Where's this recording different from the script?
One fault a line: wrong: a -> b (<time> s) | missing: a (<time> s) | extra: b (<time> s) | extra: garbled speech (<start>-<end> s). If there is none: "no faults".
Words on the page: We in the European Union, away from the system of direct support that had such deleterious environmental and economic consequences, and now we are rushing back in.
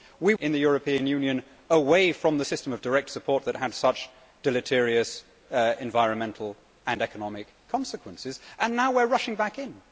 no faults